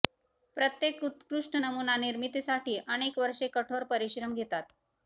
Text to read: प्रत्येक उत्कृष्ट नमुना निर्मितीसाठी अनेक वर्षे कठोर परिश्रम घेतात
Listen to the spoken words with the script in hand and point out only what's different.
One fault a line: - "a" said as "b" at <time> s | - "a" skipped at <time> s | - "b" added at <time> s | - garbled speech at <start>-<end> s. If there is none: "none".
none